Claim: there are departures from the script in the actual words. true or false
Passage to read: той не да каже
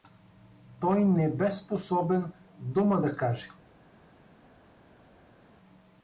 true